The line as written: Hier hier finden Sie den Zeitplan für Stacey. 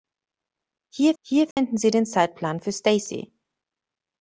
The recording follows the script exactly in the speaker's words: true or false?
true